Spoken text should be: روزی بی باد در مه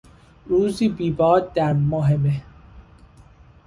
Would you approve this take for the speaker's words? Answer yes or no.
no